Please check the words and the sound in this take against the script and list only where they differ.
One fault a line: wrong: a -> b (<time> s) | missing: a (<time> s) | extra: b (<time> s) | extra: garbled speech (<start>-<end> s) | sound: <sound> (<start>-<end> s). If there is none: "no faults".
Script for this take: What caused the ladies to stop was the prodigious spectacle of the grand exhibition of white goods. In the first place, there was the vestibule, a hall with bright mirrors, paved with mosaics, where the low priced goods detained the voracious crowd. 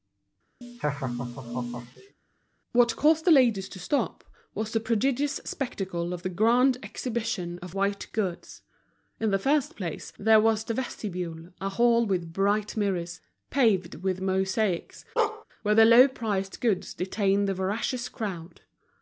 sound: laugh (0.6-2.1 s)
sound: bark (15.2-15.4 s)